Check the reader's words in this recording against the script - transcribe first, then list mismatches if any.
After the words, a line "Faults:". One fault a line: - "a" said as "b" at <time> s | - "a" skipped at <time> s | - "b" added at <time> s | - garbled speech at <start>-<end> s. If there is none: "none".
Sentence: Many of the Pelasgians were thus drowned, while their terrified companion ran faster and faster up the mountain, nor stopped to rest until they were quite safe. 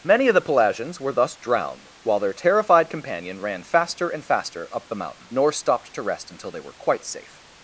Many of the Pelasgians were thus drowned, while their terrified companion ran faster and faster up the mountain, nor stopped to rest until they were quite safe.
Faults:
none